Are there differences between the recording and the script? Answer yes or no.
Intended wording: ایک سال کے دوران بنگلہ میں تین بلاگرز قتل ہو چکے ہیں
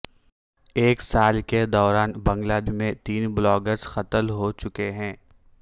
no